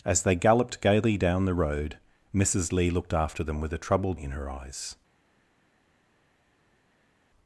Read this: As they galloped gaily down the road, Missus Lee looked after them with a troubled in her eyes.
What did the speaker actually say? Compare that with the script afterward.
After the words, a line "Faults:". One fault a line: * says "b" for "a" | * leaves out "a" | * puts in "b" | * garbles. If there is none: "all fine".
As they galloped gaily down the road, Missus Lee looked after them with a troubled in her eyes.
Faults:
all fine